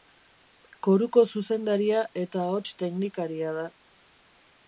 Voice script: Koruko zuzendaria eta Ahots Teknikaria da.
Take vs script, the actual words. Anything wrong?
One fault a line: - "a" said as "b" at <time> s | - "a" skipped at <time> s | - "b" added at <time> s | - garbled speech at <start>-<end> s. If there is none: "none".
none